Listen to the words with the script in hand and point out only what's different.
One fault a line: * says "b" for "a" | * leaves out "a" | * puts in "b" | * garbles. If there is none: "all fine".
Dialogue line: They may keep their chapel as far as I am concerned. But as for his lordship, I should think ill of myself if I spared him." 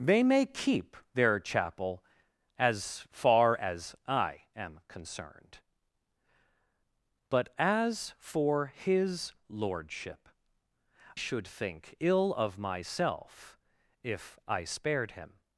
* leaves out "I"